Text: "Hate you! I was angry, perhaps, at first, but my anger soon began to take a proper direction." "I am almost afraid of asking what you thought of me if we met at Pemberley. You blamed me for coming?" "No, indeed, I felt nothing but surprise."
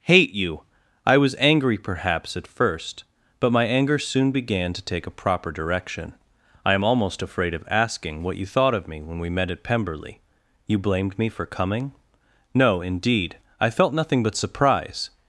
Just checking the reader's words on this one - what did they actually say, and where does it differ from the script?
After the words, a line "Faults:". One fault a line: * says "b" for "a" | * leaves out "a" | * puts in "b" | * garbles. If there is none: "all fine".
"Hate you! I was angry, perhaps, at first, but my anger soon began to take a proper direction." "I am almost afraid of asking what you thought of me when we met at Pemberley. You blamed me for coming?" "No, indeed, I felt nothing but surprise."
Faults:
* says "when" for "if"